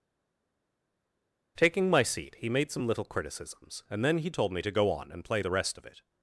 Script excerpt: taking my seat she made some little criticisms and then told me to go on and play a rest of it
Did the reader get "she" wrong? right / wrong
wrong